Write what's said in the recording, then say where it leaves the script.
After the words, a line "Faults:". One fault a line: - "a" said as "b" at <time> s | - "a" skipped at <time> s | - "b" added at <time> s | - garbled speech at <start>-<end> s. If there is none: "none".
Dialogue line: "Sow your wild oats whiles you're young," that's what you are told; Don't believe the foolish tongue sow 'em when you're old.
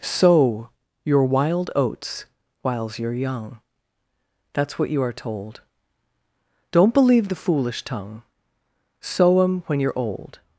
"Sow your wild oats whiles you're young," that's what you are told; Don't believe the foolish tongue sow 'em when you're old.
Faults:
none